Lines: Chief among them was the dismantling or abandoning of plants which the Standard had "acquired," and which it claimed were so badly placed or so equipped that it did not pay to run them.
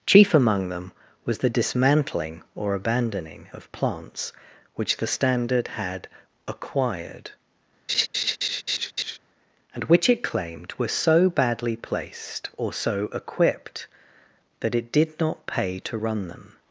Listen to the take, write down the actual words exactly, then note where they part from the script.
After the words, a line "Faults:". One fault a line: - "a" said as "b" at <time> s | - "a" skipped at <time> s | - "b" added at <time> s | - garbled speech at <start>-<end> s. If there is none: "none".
Chief among them was the dismantling or abandoning of plants which the Standard had "acquired," and which it claimed were so badly placed or so equipped that it did not pay to run them.
Faults:
none